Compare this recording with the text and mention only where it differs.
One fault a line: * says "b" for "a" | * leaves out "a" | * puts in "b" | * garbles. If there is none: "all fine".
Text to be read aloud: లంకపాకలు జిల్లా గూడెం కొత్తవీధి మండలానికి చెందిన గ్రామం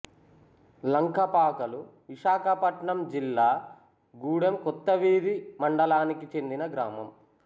* puts in "విశాఖపట్నం"